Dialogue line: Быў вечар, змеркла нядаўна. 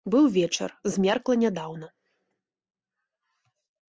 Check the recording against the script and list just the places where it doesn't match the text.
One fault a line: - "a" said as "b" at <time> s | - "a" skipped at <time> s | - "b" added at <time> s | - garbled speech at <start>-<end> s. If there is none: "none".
none